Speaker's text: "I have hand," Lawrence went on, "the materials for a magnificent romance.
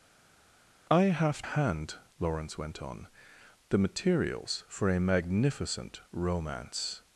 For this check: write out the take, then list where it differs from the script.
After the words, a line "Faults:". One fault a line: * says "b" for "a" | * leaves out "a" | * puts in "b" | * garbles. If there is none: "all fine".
"I have hand," Lawrence went on, "the materials for a magnificent romance.
Faults:
all fine